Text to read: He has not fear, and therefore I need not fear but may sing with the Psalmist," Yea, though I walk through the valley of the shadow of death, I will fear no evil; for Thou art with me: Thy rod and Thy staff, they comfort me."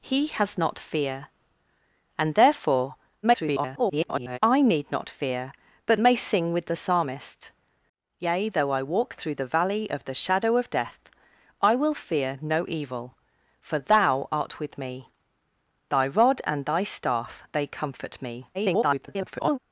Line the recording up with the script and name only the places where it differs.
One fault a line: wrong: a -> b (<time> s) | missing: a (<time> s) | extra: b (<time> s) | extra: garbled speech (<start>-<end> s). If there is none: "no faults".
extra: garbled speech (3.2-4.4 s)
extra: garbled speech (18.5-19.6 s)